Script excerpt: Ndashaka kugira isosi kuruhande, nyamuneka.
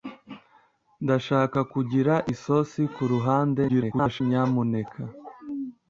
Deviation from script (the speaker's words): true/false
true